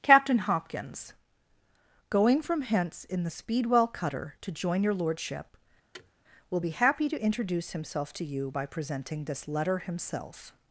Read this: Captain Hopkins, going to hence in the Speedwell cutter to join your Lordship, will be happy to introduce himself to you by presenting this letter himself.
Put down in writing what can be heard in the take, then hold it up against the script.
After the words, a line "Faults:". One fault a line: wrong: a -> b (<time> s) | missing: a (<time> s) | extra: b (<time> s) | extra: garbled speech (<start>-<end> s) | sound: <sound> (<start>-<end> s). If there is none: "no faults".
Captain Hopkins, going from hence in the Speedwell cutter to join your Lordship, will be happy to introduce himself to you by presenting this letter himself.
Faults:
wrong: to -> from (2.4 s)
sound: thud (5.9-6.1 s)